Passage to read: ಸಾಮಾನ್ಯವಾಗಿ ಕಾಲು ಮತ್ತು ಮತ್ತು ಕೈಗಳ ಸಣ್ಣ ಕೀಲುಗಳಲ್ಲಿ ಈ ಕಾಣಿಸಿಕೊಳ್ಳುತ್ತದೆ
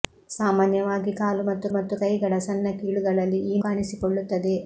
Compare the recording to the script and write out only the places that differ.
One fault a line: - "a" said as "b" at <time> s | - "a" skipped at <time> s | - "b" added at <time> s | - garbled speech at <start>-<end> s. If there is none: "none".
none